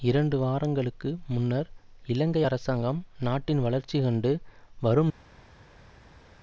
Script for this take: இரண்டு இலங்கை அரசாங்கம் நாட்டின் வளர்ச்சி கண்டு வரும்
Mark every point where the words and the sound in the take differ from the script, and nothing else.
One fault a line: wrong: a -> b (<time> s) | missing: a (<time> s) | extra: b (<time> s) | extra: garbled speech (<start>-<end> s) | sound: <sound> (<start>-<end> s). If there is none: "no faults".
extra: வாரங்களுக்கு முன்னர் (0.4 s)